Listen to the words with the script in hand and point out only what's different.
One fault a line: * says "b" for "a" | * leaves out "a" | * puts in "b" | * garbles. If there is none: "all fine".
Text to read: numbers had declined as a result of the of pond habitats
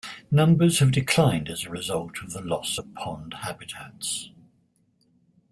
* says "have" for "had"
* puts in "loss"